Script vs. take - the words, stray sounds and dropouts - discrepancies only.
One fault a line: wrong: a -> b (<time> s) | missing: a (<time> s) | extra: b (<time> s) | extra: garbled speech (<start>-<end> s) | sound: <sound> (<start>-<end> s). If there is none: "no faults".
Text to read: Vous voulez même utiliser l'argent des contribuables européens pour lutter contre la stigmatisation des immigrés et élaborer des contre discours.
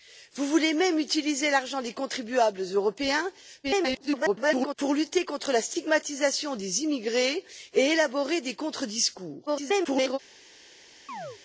extra: garbled speech (3.6-4.8 s)
extra: garbled speech (9.5-10.2 s)
sound: chirp (11.1-11.4 s)